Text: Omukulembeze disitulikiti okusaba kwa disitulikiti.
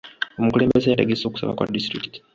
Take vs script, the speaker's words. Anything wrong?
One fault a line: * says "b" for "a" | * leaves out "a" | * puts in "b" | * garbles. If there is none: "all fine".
* says "yategese" for "disitulikiti"